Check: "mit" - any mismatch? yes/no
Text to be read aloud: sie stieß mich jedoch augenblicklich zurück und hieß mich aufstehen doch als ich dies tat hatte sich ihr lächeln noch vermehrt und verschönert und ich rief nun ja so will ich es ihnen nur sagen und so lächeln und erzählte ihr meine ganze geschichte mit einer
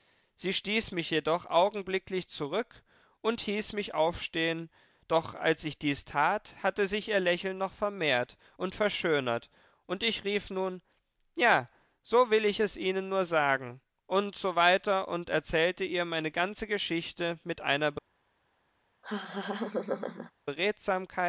no